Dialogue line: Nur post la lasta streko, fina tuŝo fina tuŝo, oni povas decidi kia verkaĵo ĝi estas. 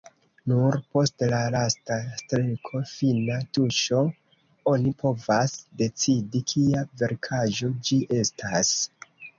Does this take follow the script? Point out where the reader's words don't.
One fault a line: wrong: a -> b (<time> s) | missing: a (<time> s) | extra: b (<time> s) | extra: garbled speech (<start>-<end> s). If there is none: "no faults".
missing: fina tuŝo (4.0 s)